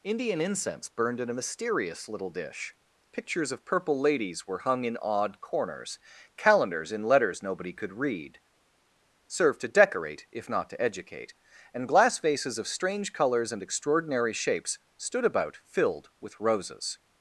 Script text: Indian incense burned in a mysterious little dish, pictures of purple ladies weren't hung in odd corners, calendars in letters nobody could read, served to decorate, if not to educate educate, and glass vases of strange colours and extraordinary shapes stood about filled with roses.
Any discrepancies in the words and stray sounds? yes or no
yes